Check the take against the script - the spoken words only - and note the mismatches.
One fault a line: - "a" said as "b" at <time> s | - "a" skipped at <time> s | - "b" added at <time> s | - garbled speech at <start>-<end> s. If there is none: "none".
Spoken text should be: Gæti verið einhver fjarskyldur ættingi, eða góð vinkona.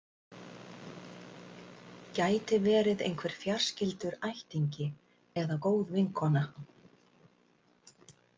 none